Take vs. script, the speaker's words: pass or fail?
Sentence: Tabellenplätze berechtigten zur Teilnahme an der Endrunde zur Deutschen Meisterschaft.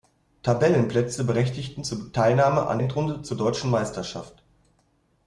fail